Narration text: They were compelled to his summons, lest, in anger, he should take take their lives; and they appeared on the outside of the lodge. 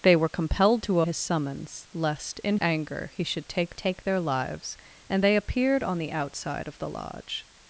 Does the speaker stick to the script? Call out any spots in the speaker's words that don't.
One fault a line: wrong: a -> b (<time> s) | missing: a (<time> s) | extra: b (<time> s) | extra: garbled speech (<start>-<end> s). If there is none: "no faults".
no faults